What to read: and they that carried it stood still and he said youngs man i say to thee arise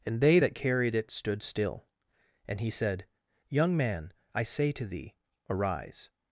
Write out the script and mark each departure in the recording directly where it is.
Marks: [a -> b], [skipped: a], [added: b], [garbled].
and they that carried it stood still and he said [youngs -> young] man i say to thee arise